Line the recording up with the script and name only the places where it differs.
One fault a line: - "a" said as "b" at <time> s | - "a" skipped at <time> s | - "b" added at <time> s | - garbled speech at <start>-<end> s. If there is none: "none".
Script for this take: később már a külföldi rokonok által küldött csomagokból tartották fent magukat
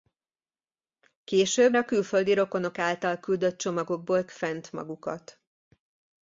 - "már" skipped at 1.8 s
- "tartották" skipped at 4.3 s